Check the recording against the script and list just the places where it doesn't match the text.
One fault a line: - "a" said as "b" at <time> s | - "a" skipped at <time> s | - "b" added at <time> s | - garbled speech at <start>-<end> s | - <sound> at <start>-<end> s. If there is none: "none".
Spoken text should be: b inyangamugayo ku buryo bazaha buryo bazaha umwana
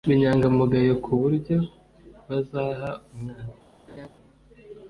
- "buryo bazaha" skipped at 2.9 s
- laugh at 3.9-4.1 s